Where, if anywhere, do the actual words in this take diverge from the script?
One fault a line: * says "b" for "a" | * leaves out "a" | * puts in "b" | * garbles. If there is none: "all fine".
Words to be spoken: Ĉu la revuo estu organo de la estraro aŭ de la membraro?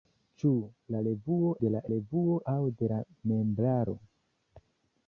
* leaves out "estu organo"
* says "revuo" for "estraro"